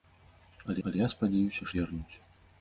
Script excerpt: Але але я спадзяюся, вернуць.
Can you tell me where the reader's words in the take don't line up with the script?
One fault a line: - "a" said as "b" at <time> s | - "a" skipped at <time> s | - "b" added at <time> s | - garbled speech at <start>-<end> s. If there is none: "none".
none